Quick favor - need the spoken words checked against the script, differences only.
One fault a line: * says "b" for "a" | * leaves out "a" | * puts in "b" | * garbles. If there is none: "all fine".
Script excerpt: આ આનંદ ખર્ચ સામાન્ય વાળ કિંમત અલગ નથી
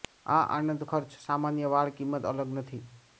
all fine